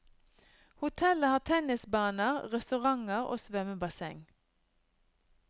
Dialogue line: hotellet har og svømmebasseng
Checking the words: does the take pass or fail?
fail